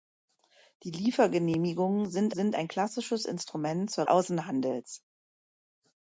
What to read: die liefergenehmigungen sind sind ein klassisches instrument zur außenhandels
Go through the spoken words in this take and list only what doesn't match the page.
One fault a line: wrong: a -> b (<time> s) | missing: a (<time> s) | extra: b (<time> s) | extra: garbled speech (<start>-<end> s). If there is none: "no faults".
no faults